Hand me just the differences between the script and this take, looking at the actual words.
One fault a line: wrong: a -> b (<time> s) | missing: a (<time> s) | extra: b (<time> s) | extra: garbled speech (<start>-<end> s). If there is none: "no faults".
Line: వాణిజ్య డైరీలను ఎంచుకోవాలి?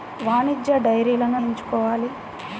no faults